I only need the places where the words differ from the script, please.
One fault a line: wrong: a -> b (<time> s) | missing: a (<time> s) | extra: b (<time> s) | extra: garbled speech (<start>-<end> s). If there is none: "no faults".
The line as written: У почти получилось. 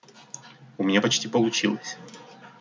extra: меня (0.8 s)